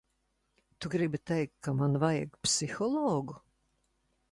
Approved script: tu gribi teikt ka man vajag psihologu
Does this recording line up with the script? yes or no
yes